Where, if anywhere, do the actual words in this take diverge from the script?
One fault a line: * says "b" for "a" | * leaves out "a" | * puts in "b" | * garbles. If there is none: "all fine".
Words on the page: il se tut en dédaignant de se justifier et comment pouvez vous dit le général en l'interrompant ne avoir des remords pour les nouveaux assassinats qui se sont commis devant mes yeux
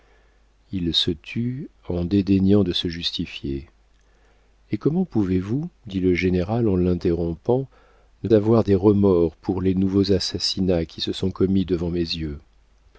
all fine